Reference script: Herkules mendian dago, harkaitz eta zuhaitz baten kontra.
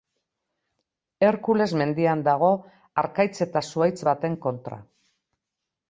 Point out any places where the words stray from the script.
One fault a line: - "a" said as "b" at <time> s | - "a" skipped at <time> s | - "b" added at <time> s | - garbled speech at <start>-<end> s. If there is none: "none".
none